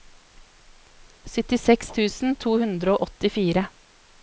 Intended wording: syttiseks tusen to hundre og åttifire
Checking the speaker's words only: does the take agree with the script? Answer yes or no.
yes